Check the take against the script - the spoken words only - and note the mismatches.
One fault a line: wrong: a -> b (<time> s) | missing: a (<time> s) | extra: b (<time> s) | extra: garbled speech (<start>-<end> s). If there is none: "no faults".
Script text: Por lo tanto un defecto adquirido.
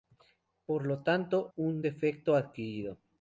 no faults